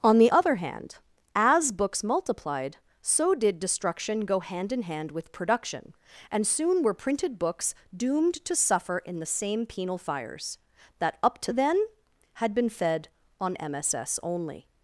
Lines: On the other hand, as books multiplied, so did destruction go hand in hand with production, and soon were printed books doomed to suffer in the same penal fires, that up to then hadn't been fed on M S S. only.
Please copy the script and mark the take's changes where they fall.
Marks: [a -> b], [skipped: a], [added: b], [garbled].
On the other hand, as books multiplied, so did destruction go hand in hand with production, and soon were printed books doomed to suffer in the same penal fires, that up to then [hadn't -> had] been fed on M S S. only.